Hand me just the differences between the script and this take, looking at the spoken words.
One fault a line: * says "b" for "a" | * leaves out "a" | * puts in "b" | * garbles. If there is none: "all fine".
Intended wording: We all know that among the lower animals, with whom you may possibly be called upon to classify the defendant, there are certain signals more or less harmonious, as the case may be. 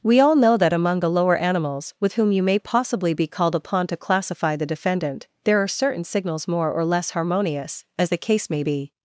all fine